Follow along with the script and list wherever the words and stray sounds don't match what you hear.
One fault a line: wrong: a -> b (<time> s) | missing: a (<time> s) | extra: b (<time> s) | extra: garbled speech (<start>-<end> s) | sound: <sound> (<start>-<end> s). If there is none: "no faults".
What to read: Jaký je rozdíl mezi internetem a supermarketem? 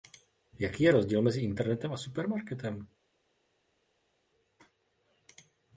no faults